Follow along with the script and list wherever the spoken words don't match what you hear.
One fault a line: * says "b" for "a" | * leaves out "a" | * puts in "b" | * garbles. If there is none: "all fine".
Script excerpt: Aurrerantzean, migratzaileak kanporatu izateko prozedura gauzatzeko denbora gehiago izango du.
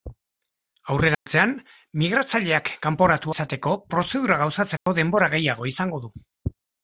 all fine